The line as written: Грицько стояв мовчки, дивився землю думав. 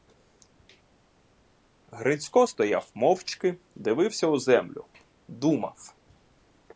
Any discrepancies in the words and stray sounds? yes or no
yes